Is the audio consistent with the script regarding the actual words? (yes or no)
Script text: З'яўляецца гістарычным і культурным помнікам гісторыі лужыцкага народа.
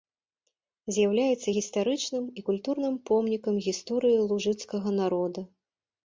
yes